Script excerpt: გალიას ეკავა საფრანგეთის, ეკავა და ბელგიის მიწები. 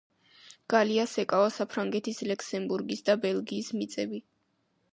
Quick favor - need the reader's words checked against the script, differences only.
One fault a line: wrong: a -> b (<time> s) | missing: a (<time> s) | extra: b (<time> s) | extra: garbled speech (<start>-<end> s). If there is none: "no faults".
wrong: ეკავა -> ლუქსემბურგის (2.3 s)